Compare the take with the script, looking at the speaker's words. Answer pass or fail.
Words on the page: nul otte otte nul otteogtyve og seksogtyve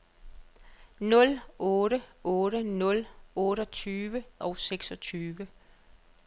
pass